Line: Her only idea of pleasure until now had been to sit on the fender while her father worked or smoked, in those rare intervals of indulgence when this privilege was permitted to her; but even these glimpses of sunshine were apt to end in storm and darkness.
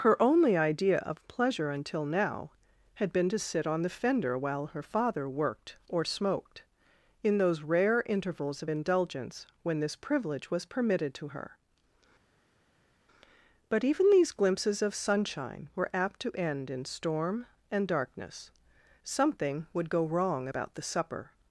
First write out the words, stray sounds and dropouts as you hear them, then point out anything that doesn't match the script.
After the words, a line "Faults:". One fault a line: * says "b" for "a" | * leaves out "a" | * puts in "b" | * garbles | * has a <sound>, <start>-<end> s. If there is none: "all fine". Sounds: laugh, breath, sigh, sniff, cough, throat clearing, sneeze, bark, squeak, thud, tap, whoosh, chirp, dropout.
Her only idea of pleasure until now had been to sit on the fender while her father worked or smoked, in those rare intervals of indulgence when this privilege was permitted to her; but even these glimpses of sunshine were apt to end in storm and darkness. Something would go wrong about the supper
Faults:
* puts in "Something would go wrong about the supper"